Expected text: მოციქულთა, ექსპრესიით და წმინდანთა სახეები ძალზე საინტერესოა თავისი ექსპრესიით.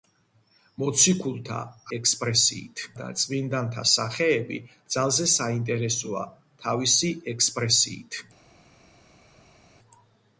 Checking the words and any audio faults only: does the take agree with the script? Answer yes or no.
yes